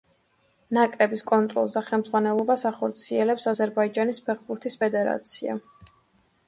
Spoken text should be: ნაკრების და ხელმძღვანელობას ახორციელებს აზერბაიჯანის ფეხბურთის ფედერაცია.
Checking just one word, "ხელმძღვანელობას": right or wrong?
right